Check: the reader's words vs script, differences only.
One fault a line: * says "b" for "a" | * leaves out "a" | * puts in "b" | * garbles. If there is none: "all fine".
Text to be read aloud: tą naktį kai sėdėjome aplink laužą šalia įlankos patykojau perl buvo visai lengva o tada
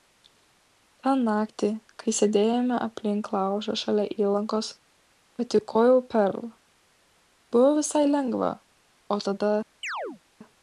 all fine